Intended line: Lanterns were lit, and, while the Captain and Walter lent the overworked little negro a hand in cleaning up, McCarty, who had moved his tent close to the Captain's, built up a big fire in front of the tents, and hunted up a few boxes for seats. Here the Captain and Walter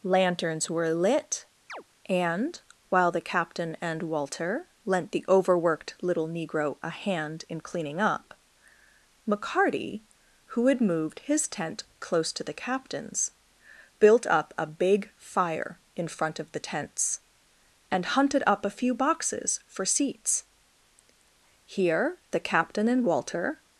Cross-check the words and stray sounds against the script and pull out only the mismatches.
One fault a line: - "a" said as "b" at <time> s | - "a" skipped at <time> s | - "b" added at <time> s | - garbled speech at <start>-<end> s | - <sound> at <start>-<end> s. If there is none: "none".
- chirp at 1.7-1.8 s